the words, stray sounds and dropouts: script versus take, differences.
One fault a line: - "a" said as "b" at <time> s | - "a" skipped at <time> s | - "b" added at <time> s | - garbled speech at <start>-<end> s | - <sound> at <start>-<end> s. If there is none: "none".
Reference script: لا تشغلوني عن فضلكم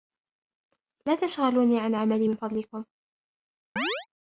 - "عملي من" added at 1.9 s
- chirp at 3.8-4.1 s